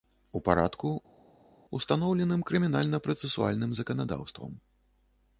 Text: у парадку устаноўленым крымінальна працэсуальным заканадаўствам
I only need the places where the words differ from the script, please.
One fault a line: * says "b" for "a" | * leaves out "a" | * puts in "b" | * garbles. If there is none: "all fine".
all fine